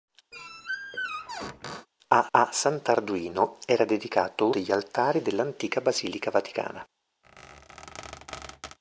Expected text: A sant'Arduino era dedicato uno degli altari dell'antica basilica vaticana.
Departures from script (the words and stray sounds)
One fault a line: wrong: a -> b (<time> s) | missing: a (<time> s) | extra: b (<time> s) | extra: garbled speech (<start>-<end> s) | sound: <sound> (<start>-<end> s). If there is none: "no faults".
sound: squeak (0.3-1.9 s)
extra: a (2.3 s)
missing: uno (4.5 s)
sound: squeak (7.2-8.8 s)